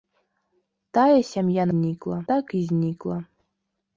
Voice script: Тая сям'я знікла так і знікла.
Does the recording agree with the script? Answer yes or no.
yes